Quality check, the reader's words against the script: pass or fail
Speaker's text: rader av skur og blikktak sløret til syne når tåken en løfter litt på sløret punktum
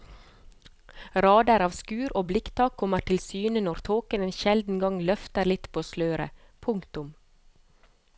fail